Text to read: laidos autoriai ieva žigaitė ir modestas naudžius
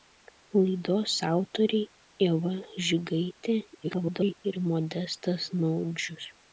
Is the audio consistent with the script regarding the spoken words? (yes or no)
no